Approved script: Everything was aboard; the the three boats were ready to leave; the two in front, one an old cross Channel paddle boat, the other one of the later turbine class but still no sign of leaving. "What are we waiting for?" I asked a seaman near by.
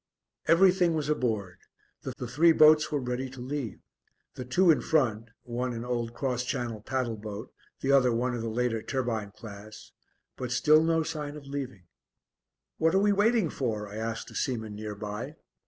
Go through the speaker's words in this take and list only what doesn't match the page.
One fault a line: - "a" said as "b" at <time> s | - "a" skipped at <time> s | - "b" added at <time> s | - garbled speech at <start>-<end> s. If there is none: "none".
none